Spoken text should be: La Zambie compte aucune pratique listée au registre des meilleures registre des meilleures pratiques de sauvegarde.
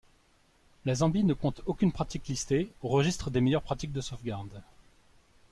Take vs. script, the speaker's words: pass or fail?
fail